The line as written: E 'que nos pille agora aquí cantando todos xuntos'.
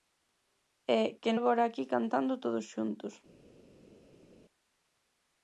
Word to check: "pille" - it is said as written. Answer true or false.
false